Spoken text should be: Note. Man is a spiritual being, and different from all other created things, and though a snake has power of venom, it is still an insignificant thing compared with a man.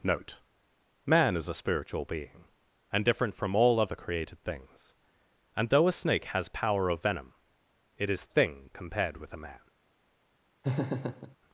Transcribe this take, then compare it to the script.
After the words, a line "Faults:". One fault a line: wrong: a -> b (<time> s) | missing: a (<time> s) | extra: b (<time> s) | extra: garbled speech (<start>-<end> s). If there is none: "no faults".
Note. Man is a spiritual being, and different from all other created things, and though a snake has power of venom, it is thing compared with a man.
Faults:
missing: still an insignificant (8.2 s)